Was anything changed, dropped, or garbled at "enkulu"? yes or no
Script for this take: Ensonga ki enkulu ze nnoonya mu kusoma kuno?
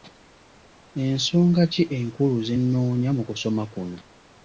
no